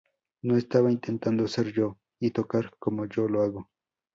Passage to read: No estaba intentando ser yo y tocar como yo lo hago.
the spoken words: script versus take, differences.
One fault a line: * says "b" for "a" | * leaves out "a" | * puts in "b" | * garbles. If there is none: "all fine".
all fine